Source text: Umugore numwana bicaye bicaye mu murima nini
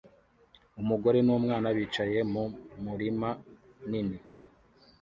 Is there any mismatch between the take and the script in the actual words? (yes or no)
yes